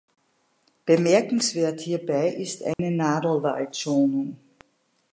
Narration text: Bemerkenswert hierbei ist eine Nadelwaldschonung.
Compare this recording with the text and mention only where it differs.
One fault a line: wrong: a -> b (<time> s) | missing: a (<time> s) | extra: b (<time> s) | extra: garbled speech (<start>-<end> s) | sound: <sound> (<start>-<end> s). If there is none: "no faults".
sound: dropout (2.7-2.8 s)